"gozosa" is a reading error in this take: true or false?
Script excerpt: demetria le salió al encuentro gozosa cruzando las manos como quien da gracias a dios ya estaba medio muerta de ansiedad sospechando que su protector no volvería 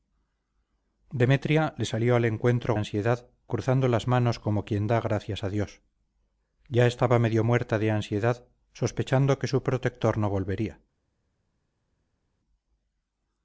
true